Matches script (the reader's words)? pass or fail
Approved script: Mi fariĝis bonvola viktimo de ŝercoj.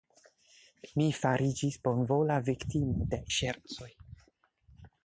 pass